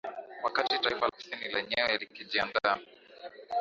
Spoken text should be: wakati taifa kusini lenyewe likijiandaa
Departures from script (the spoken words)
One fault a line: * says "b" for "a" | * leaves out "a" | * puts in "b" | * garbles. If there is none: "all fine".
all fine